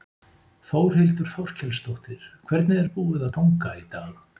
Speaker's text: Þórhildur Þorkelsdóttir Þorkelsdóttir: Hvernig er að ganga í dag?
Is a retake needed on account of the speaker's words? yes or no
yes